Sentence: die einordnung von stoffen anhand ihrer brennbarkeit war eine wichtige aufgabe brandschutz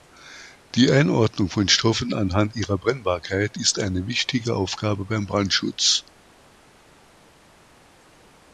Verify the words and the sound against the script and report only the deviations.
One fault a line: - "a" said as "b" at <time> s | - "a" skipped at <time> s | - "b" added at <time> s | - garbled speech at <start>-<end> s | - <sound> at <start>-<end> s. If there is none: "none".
- "war" said as "ist" at 3.6 s
- "beim" added at 5.1 s